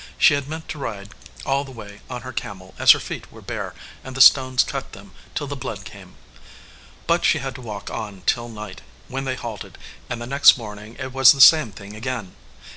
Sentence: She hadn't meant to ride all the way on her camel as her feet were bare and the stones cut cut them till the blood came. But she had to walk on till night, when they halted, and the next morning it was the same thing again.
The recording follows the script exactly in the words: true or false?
false